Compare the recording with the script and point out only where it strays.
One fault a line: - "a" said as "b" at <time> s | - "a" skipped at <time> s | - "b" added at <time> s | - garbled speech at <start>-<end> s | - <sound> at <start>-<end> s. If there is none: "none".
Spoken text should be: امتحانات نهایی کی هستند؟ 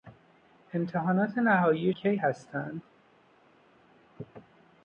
none